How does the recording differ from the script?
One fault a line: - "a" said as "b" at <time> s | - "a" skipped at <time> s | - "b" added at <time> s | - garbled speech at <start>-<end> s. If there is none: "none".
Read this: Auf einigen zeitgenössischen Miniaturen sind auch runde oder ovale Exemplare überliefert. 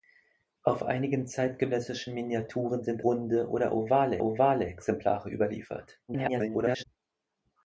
- "auch" skipped at 3.1 s
- "ovale" added at 4.2 s
- garbled speech at 6.1-6.8 s